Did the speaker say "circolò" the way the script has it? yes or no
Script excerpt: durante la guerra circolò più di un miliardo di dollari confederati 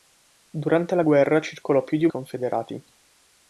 yes